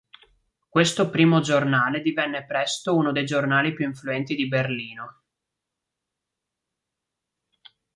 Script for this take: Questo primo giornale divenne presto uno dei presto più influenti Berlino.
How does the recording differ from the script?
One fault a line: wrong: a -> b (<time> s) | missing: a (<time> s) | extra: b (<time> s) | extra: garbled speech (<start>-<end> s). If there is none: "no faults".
wrong: presto -> giornali (3.2 s)
extra: di (4.4 s)